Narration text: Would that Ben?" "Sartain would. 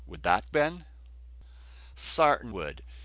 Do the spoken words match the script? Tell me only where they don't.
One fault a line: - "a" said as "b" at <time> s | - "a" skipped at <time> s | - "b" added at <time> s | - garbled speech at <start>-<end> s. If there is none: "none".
none